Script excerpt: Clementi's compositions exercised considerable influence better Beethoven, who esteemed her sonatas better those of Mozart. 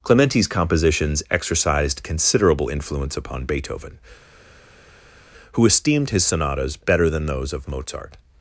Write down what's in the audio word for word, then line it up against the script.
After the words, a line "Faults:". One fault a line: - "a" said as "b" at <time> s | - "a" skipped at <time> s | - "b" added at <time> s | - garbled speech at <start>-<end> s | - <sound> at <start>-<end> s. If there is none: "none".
Clementi's compositions exercised considerable influence upon Beethoven, who esteemed his sonatas better than those of Mozart.
Faults:
- "better" said as "upon" at 3.1 s
- "her" said as "his" at 6.1 s
- "than" added at 7.1 s